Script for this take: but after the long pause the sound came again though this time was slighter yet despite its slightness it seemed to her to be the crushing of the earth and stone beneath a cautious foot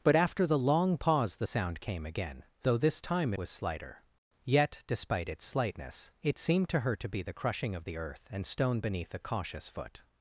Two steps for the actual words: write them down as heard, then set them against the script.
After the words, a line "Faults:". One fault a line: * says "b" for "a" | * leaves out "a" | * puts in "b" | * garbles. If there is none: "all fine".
but after the long pause the sound came again though this time was slighter yet despite its slightness it seemed to her to be the crushing of the earth and stone beneath a cautious foot
Faults:
all fine